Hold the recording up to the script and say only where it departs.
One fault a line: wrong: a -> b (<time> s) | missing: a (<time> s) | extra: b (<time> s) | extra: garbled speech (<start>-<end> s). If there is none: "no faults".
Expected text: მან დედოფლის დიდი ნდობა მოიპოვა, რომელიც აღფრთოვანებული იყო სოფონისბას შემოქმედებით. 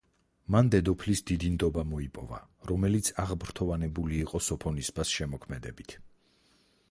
no faults